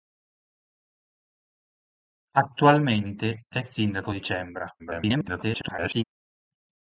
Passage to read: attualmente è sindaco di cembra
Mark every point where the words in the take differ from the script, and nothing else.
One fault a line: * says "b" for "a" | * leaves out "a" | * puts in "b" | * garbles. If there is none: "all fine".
* garbles